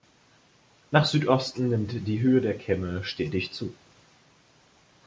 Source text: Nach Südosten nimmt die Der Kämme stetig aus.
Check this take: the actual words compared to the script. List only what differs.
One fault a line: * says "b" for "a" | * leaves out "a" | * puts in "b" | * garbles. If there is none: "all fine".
* puts in "Höhe"
* says "zu" for "aus"